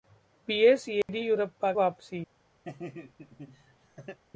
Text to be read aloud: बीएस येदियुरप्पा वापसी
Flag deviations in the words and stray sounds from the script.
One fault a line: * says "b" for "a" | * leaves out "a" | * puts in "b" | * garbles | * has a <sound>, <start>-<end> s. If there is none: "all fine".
* has a dropout, 1.0-1.1 s
* has a laugh, 2.6-4.2 s